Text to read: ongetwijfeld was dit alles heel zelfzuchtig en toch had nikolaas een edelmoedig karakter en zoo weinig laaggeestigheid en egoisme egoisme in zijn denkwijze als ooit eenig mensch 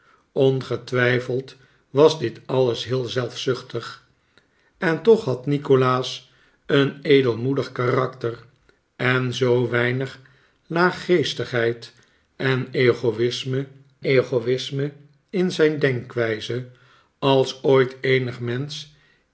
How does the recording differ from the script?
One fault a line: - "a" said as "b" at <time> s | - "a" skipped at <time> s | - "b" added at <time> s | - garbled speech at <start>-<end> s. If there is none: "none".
none